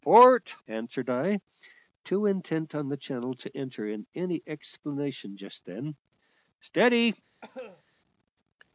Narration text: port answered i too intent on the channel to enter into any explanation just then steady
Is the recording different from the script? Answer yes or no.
no